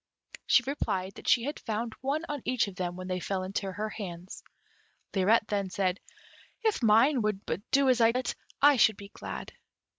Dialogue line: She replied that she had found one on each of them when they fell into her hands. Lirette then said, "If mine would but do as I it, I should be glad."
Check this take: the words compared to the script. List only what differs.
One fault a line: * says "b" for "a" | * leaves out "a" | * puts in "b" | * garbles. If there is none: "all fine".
all fine